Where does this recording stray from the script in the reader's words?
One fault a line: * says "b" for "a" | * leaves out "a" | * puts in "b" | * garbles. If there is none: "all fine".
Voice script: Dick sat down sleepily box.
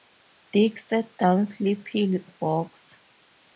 all fine